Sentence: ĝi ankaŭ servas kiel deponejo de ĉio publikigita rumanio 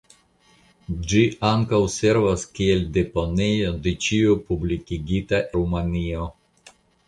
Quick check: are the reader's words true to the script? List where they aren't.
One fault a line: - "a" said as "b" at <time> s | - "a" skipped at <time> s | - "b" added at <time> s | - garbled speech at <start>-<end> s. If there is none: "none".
none